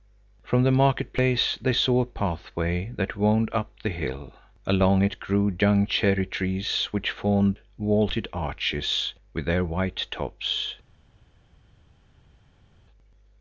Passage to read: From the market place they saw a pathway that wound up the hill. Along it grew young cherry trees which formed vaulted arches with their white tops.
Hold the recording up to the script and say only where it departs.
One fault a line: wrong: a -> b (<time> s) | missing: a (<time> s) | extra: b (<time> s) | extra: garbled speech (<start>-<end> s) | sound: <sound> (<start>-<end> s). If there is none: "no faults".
no faults